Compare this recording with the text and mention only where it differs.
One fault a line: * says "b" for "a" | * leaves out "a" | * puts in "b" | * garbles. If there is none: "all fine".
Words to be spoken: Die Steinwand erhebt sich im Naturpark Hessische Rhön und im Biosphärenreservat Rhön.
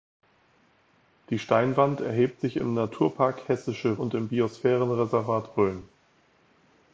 * leaves out "Rhön"